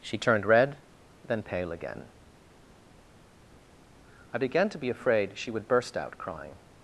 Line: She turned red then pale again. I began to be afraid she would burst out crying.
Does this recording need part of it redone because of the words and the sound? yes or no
no